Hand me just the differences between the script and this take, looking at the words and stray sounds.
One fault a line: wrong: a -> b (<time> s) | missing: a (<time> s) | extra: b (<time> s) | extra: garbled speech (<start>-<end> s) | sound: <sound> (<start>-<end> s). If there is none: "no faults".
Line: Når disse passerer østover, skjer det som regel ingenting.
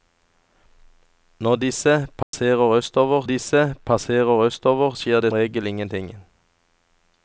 sound: dropout (2.2-2.3 s)
extra: disse passerer østover (3.2 s)
missing: som (5.3 s)